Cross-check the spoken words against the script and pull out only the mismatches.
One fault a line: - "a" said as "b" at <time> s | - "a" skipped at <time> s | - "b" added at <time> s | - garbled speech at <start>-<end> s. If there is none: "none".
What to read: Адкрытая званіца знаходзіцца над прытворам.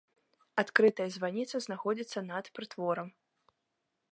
none